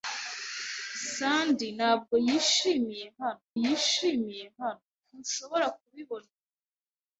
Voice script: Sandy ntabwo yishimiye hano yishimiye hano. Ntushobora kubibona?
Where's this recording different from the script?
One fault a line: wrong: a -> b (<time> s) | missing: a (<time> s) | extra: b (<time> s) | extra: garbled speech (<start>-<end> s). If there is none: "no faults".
no faults